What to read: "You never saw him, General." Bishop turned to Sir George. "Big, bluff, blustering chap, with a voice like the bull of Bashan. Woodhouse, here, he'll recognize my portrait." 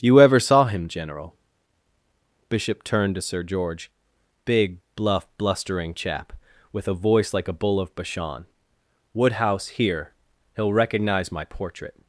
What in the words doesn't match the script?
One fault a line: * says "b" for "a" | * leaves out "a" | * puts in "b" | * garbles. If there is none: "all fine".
* says "ever" for "never"
* says "a" for "the"